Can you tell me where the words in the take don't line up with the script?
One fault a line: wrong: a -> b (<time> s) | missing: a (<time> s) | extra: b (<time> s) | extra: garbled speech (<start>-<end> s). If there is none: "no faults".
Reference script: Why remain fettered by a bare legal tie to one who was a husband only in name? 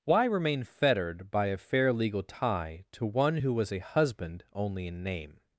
wrong: bare -> fair (1.6 s)